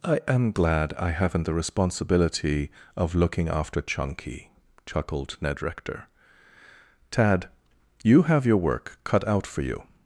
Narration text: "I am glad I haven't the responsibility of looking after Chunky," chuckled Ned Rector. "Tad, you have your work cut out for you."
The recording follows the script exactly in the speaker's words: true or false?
true